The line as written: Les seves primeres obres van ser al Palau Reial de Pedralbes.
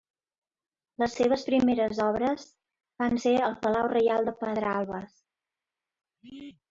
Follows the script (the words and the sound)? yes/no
yes